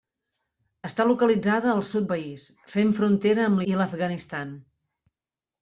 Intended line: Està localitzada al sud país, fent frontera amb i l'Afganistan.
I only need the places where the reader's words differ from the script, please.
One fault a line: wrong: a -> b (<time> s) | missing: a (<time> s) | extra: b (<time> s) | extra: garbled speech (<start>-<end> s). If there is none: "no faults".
no faults